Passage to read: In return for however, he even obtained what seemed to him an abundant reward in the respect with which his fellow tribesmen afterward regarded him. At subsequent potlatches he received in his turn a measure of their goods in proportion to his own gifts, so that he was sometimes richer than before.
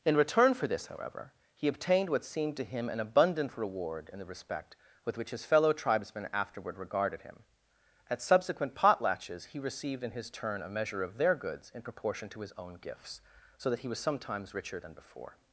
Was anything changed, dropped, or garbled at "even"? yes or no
yes